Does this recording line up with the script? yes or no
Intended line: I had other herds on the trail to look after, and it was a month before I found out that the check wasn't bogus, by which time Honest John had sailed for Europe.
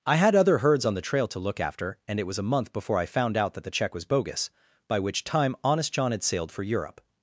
no